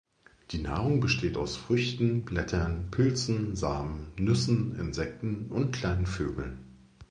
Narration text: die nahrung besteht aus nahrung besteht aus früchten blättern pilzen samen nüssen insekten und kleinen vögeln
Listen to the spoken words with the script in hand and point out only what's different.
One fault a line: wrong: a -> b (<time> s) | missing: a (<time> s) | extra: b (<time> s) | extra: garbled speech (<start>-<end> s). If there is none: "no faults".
missing: nahrung besteht aus (1.6 s)